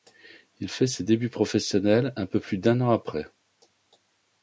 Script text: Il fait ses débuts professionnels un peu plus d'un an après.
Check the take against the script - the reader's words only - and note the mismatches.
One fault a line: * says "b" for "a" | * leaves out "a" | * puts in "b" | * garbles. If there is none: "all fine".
all fine